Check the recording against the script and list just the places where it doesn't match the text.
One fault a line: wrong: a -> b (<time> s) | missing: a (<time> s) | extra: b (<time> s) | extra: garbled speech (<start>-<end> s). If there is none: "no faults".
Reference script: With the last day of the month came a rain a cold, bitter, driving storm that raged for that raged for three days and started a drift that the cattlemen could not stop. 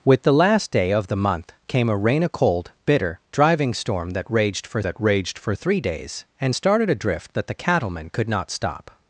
no faults